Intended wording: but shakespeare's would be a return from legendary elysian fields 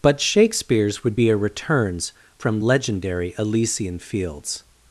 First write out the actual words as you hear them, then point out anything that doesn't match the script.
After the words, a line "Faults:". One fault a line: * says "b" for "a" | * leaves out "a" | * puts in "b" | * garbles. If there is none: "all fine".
but shakespeare's would be a returns from legendary elysian fields
Faults:
* says "returns" for "return"